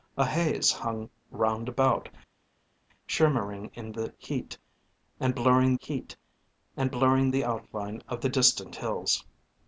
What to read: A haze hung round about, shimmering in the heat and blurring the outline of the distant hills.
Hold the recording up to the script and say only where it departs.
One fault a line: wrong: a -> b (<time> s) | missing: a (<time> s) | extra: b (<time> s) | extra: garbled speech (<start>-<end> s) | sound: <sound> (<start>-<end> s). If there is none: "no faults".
extra: heat and blurring (5.8 s)